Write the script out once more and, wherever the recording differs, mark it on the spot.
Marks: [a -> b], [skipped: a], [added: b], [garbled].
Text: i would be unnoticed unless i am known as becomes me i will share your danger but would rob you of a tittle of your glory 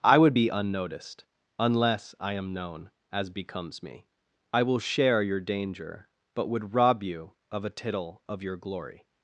i would be unnoticed unless i am known as becomes me i will share your danger but would rob you of a tittle of your glory